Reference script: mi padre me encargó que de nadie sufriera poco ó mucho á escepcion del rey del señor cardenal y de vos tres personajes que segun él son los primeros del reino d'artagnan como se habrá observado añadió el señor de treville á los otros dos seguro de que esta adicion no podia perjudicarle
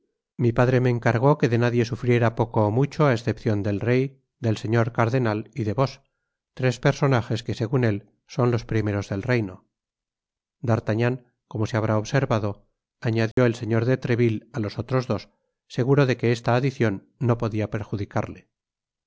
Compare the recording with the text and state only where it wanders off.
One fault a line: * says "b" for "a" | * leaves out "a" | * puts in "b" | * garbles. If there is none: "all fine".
all fine